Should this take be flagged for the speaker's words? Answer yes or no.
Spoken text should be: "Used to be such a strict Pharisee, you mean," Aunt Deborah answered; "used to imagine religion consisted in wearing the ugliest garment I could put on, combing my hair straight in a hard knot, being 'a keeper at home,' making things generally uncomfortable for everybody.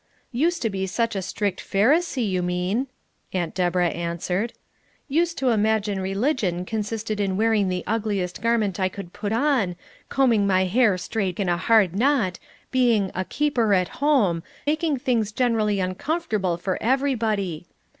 no